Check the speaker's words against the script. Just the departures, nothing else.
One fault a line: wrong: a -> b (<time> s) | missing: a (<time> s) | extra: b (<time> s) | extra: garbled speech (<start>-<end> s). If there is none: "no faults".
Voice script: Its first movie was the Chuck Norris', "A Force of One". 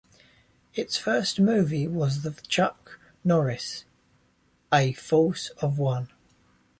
no faults